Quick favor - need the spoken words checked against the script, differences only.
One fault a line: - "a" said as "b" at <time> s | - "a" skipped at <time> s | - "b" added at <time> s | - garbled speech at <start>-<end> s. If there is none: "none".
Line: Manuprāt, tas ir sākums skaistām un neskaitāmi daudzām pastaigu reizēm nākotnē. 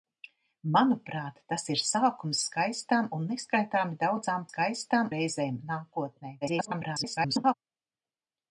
- "pastaigu" said as "skaistām" at 4.5 s
- garbled speech at 6.4-7.5 s